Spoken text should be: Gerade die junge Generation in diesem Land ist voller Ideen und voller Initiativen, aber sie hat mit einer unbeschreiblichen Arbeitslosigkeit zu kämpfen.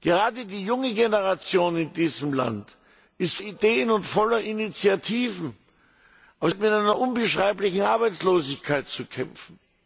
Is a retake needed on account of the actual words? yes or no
yes